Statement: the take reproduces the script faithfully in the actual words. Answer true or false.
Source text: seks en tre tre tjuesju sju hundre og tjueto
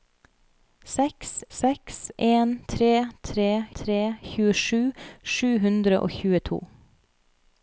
false